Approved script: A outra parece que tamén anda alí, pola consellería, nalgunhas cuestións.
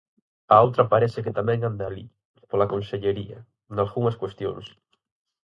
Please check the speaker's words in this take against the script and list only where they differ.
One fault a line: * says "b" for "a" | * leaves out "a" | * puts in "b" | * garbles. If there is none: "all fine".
all fine